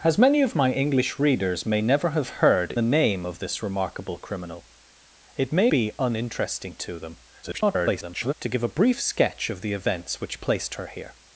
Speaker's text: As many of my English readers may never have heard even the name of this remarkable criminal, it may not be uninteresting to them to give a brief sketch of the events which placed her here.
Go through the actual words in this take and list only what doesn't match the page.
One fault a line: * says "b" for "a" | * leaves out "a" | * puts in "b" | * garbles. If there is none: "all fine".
* leaves out "even"
* leaves out "not"
* garbles